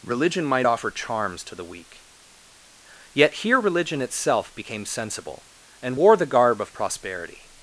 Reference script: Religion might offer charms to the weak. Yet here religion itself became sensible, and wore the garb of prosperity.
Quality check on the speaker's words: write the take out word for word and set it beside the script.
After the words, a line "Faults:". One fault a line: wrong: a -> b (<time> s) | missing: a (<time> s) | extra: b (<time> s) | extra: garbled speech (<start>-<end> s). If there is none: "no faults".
Religion might offer charms to the weak. Yet here religion itself became sensible, and wore the garb of prosperity.
Faults:
no faults